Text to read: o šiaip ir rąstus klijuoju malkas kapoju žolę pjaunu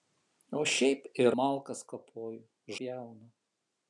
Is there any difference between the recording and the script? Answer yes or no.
yes